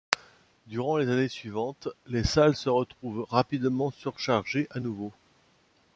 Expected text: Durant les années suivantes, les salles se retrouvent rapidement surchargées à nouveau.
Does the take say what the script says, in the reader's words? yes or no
yes